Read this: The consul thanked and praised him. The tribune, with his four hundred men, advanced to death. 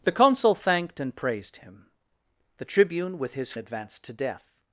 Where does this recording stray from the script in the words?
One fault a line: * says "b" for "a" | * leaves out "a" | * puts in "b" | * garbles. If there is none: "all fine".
* leaves out "four hundred men"